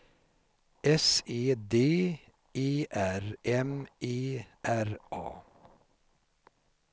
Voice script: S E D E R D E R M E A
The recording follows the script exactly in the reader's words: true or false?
false